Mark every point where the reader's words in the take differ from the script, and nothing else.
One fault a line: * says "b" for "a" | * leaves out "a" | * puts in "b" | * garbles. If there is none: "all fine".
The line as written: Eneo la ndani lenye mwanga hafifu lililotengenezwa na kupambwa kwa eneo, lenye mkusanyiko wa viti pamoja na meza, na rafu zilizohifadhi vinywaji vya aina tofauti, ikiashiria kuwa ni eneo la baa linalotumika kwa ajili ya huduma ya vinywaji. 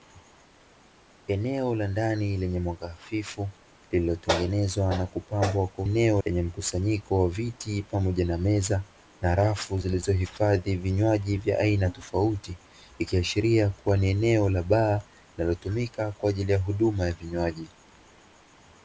all fine